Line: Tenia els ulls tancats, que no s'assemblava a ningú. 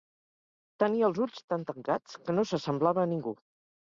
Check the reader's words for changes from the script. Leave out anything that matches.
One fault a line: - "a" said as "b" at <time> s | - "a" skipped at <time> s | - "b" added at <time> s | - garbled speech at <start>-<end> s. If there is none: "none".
- "tan" added at 1.5 s